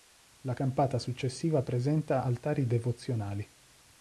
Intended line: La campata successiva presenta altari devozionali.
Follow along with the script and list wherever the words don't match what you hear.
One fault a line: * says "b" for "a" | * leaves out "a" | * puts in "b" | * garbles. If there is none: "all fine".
all fine